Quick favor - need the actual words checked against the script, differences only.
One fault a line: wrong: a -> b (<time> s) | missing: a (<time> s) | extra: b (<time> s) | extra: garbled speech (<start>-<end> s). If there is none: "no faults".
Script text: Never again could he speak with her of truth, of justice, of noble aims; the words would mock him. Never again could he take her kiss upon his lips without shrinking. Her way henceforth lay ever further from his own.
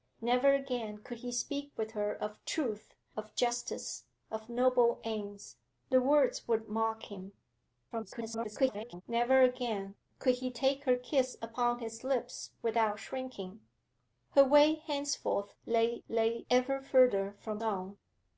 extra: garbled speech (7.9-9.0 s)
extra: lay (16.1 s)
missing: his (17.6 s)